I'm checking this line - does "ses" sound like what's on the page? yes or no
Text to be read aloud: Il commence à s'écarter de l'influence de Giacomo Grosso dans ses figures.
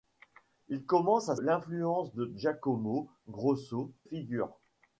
no